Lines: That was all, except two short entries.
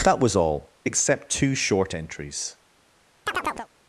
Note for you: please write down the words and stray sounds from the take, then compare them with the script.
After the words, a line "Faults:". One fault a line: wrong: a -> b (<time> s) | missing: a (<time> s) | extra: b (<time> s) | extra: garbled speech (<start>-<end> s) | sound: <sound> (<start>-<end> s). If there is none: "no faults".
That was all, except two short entries.
Faults:
sound: chirp (3.3-3.7 s)